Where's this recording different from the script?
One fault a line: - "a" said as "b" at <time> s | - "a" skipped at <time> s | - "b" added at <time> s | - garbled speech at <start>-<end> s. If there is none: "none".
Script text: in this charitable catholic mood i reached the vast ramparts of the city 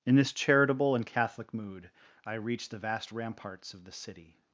- "and" added at 0.9 s